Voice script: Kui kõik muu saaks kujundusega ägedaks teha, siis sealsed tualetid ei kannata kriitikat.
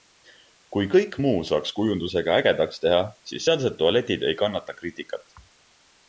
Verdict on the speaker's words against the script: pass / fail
pass